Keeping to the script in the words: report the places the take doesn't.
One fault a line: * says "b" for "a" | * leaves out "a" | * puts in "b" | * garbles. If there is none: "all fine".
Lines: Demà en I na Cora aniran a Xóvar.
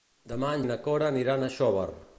all fine